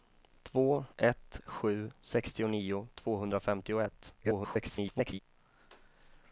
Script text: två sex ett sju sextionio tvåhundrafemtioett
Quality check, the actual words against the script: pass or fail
fail